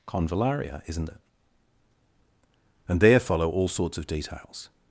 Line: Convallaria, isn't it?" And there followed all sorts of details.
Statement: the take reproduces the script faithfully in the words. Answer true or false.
false